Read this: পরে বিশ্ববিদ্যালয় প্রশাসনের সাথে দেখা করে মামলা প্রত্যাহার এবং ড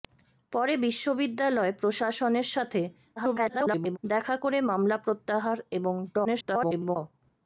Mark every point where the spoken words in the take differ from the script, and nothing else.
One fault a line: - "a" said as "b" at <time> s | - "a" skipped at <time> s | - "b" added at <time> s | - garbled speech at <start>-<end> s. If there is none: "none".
- garbled speech at 3.2-4.0 s
- garbled speech at 6.2-7.0 s